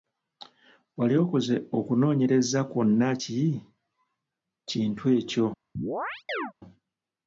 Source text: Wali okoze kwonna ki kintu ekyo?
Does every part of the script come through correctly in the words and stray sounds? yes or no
no